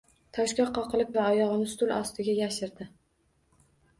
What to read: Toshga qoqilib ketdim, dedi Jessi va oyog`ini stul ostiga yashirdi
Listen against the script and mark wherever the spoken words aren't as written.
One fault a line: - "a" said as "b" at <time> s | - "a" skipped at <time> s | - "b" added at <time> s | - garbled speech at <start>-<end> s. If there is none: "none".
- "ketdim dedi Jessi" skipped at 1.1 s